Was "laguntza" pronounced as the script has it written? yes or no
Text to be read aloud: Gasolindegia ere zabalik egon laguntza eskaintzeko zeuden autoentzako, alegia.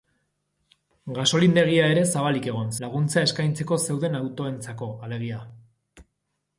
yes